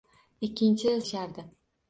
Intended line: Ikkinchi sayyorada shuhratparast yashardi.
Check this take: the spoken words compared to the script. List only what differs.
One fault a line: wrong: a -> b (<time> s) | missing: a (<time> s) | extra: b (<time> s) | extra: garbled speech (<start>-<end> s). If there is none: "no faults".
missing: sayyorada shuhratparast (0.9 s)